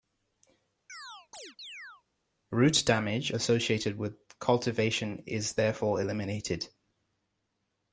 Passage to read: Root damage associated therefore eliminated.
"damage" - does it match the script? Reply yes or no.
yes